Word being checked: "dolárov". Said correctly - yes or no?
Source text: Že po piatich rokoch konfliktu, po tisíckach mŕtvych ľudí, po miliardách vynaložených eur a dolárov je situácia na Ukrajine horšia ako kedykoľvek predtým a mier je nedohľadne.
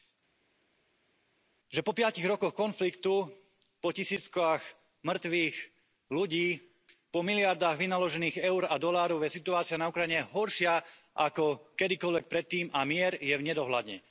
yes